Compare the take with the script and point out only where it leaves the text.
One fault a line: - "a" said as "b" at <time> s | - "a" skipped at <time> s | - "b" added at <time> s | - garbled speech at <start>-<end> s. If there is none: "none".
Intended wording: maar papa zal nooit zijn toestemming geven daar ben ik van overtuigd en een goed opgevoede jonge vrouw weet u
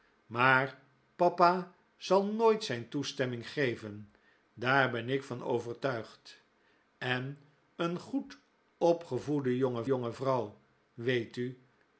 - "jonge" added at 9.9 s